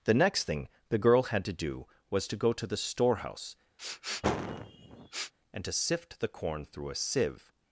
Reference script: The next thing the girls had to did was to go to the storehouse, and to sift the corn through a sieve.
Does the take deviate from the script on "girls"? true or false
true